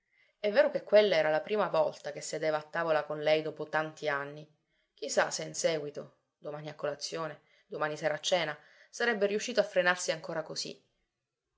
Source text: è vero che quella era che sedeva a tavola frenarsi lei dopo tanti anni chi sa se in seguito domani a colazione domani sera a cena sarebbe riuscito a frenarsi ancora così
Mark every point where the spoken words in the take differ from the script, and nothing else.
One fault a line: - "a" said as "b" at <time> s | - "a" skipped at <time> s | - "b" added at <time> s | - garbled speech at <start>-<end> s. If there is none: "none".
- "la prima volta" added at 1.3 s
- "frenarsi" said as "con" at 3.0 s